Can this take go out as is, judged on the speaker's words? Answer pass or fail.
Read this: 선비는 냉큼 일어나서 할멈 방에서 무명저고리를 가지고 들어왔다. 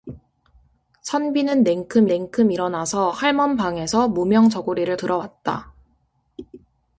fail